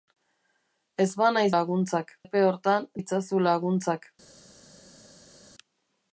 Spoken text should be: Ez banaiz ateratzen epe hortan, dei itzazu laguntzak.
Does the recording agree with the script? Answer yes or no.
no